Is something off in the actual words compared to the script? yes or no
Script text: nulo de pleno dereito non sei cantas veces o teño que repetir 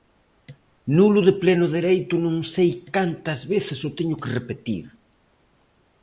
no